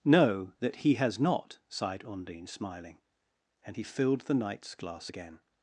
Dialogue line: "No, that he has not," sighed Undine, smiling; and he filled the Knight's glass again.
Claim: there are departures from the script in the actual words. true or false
false